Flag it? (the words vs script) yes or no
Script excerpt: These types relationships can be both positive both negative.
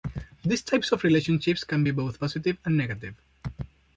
yes